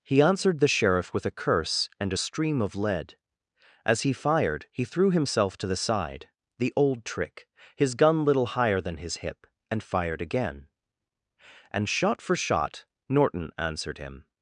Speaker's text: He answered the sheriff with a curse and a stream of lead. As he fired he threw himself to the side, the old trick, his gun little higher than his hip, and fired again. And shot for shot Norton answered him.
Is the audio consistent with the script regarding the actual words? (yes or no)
yes